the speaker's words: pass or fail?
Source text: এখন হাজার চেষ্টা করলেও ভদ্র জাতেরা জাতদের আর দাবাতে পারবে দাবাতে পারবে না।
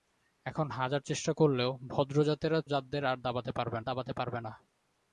pass